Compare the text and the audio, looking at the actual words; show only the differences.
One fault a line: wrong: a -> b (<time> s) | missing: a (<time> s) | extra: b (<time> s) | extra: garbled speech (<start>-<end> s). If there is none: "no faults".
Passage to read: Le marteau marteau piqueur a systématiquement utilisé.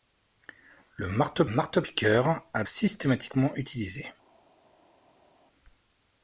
no faults